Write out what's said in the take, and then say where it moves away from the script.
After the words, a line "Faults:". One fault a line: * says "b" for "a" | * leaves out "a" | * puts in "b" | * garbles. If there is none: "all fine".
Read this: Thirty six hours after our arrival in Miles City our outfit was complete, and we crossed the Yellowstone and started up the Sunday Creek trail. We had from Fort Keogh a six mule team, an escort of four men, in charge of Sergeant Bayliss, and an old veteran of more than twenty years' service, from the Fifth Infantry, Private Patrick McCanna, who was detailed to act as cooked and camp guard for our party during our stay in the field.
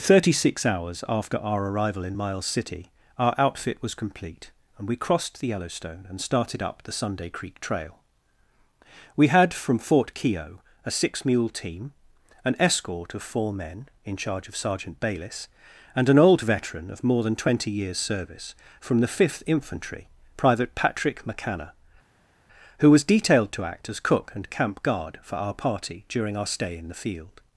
Thirty six hours after our arrival in Miles City our outfit was complete, and we crossed the Yellowstone and started up the Sunday Creek trail. We had from Fort Keogh a six mule team, an escort of four men, in charge of Sergeant Bayliss, and an old veteran of more than twenty years' service, from the Fifth Infantry, Private Patrick McCanna, who was detailed to act as cook and camp guard for our party during our stay in the field.
Faults:
* says "cook" for "cooked"